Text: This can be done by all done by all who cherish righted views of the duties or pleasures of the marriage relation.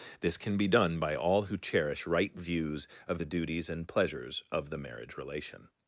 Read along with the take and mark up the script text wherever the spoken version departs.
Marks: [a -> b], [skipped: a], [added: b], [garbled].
This can be done by all [skipped: done by all] who cherish [righted -> right] views of the duties [or -> and] pleasures of the marriage relation.